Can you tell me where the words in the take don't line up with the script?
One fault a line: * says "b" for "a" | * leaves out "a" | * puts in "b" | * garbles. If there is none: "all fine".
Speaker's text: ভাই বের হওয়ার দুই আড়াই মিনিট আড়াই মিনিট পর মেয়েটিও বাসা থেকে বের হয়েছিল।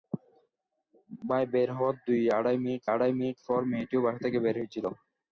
all fine